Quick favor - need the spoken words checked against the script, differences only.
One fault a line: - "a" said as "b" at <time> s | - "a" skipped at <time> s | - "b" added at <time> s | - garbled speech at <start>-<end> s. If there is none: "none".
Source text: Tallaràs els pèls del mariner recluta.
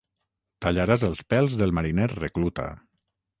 none